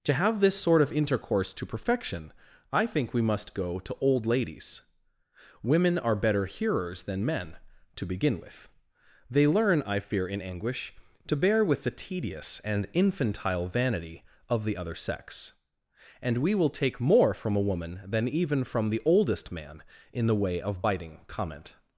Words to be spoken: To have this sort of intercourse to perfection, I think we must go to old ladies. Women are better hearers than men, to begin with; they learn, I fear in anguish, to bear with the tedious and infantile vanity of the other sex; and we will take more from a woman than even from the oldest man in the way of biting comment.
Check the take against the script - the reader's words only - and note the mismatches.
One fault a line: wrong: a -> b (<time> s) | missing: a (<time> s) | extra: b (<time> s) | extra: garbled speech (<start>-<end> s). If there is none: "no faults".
no faults